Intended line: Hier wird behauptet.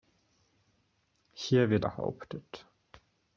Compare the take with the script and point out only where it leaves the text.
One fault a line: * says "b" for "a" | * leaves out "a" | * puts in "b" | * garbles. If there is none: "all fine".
all fine